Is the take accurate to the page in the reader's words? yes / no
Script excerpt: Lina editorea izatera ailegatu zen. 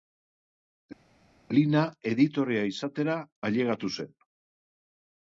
yes